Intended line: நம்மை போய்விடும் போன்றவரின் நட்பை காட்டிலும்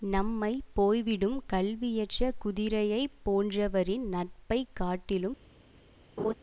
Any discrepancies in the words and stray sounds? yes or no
yes